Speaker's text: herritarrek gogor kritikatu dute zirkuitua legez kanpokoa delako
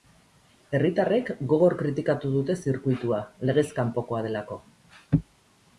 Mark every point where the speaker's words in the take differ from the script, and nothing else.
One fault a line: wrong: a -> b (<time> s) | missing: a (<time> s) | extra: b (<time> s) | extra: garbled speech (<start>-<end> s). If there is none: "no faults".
no faults